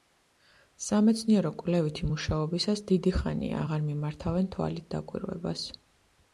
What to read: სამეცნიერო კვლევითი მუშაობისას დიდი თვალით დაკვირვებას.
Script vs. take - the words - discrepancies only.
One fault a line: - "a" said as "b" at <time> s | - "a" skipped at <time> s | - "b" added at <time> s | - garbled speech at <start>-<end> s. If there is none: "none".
- "ხანია აღარ მიმართავენ" added at 3.2 s